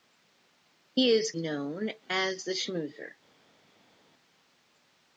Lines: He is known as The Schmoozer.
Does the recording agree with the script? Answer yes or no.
yes